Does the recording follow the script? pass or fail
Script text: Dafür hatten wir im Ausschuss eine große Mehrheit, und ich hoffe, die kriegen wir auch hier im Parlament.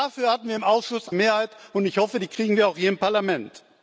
fail